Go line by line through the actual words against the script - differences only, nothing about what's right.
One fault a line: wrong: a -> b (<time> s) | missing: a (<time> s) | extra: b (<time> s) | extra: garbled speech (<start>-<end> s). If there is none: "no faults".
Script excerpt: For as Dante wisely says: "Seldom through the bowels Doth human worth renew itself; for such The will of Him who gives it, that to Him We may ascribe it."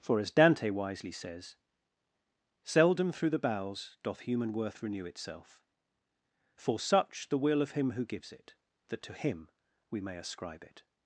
no faults